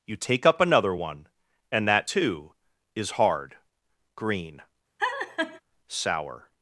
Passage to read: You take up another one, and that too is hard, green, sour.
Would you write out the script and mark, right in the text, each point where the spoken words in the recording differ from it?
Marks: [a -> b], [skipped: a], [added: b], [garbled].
You take up another one, and that too is hard, green, sour.